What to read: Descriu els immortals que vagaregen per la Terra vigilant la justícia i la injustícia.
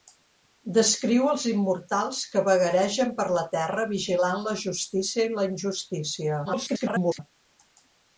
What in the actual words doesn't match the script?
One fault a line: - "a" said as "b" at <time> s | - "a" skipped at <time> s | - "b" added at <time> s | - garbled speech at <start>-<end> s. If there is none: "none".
- garbled speech at 6.4-7.2 s